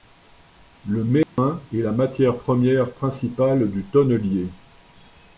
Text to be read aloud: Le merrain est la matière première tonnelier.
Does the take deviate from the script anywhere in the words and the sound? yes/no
yes